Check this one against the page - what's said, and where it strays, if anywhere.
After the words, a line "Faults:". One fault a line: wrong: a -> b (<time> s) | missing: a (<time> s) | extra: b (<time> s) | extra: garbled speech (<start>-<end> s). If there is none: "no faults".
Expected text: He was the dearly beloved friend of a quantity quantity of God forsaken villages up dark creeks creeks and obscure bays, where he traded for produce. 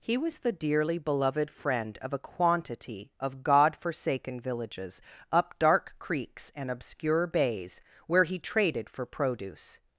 He was the dearly beloved friend of a quantity of God forsaken villages up dark creeks and obscure bays, where he traded for produce.
Faults:
missing: quantity (3.1 s)
missing: creeks (6.5 s)